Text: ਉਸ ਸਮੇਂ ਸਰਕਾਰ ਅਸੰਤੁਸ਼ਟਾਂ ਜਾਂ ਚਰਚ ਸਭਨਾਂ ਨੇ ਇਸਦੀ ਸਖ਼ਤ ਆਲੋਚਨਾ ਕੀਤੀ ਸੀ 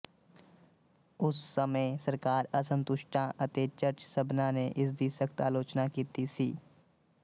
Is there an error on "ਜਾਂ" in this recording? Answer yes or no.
yes